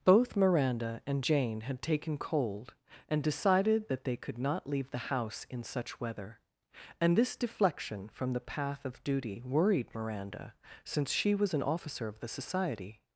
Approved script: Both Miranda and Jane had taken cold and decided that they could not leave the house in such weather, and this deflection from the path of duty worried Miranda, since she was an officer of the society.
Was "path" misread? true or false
false